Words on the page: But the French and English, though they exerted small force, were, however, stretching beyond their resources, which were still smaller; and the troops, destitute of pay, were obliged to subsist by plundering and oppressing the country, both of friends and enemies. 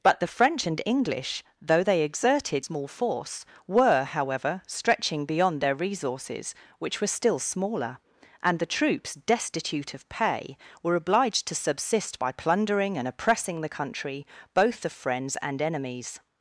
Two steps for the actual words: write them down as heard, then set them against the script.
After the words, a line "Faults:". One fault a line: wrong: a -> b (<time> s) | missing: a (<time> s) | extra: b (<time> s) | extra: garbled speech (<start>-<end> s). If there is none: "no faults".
But the French and English, though they exerted small force, were, however, stretching beyond their resources, which were still smaller; and the troops, destitute of pay, were obliged to subsist by plundering and oppressing the country, both of friends and enemies.
Faults:
no faults